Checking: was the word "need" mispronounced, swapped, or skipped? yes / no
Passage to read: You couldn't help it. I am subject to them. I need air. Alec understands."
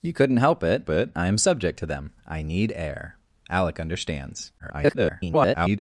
no